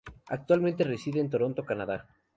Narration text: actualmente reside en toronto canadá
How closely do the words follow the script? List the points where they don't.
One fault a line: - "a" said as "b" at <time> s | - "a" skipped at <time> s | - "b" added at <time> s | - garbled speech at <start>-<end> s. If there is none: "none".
none